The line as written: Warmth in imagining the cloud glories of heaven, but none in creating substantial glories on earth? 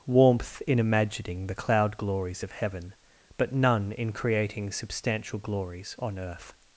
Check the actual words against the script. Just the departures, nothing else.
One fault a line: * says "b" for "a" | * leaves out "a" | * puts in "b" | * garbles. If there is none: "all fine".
all fine